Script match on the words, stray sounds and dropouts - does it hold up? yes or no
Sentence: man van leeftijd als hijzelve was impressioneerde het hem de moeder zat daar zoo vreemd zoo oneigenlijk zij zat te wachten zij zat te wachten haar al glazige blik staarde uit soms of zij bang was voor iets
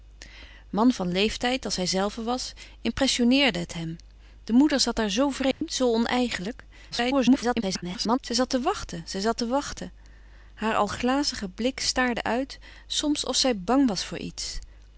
no